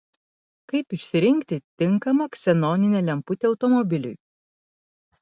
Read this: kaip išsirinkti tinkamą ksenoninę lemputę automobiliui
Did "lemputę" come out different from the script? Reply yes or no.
no